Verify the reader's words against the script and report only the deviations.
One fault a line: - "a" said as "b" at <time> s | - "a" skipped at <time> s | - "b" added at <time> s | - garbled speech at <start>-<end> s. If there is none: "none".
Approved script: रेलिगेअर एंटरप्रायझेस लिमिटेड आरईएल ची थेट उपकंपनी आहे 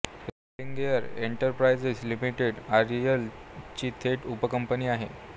none